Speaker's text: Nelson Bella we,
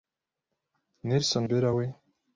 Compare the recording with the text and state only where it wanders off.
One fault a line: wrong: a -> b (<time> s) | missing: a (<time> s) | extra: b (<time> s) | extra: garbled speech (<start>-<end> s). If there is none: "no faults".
no faults